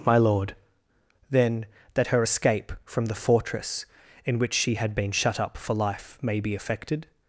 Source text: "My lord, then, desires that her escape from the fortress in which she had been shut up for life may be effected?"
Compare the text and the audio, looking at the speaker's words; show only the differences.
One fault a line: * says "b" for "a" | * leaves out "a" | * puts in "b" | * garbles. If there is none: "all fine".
* leaves out "desires"